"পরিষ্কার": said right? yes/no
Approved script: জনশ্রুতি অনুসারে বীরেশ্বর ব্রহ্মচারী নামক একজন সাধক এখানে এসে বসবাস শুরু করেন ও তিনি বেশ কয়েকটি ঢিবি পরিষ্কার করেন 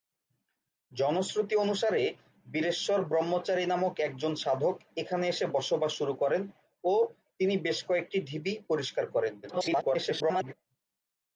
yes